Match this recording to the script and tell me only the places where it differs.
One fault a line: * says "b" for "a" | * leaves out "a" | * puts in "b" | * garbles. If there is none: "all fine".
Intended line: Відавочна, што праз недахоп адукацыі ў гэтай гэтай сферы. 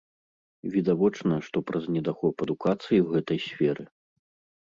* leaves out "гэтай"